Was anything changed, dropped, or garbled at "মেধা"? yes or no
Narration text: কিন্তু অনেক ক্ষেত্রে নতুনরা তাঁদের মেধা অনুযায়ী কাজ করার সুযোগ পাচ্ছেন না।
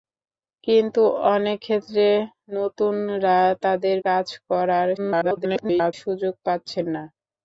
yes